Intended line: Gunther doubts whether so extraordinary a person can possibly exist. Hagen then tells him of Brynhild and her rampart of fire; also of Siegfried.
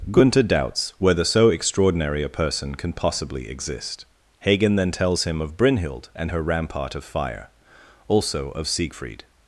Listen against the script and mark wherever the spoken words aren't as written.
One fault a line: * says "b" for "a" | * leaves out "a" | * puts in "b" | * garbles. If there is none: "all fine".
all fine